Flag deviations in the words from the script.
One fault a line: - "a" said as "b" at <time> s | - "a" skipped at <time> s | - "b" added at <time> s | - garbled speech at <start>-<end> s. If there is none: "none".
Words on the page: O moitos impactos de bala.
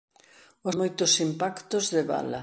none